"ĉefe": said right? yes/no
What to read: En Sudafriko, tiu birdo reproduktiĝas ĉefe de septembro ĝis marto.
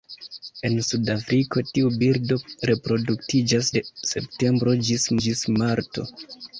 no